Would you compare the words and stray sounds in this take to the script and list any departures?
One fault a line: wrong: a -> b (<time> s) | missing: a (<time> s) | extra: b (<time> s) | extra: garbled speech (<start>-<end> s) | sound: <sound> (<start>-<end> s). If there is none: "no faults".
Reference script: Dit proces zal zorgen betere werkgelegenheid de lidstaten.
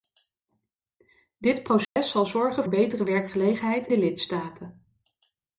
sound: dropout (1.8-2.0 s)